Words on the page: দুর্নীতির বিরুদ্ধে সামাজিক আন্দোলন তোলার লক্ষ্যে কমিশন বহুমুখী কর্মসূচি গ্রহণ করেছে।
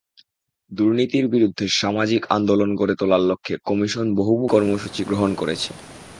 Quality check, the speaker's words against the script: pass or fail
fail